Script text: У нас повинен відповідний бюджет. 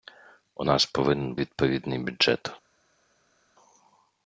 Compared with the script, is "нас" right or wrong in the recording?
right